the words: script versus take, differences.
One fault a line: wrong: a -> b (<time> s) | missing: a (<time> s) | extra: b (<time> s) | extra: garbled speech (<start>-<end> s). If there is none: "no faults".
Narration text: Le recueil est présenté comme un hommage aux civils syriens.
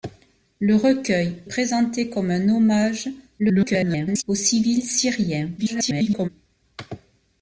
missing: est (1.4 s)
extra: garbled speech (3.4-4.2 s)
extra: garbled speech (5.6-6.3 s)